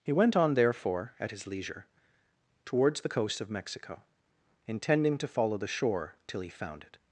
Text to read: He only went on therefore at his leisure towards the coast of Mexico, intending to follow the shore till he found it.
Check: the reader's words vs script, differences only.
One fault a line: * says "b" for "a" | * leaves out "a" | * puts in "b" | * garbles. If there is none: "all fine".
* leaves out "only"